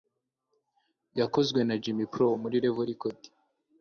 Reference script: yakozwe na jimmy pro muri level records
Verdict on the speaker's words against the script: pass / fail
pass